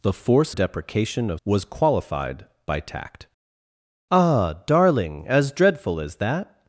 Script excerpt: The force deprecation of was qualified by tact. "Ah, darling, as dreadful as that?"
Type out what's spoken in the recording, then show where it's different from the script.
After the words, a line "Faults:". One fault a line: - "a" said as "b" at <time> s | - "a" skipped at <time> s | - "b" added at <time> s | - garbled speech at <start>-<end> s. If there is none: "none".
The force deprecation of was qualified by tact. "Ah, darling, as dreadful as that?"
Faults:
none